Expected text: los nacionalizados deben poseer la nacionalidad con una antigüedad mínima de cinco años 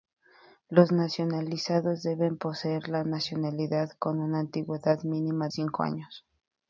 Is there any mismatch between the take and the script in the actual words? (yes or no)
yes